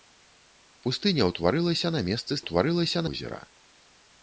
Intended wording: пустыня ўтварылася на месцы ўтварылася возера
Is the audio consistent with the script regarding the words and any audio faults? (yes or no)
yes